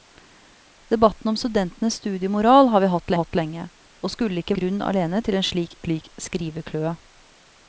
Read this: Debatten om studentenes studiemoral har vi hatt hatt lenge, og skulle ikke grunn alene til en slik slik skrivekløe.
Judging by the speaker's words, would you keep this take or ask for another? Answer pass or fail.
pass